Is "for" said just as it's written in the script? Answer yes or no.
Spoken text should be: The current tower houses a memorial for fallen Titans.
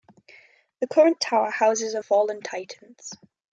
no